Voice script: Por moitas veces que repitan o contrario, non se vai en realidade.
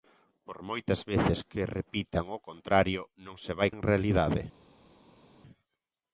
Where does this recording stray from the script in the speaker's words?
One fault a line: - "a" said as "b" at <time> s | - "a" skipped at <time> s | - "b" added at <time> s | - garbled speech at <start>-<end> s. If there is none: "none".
none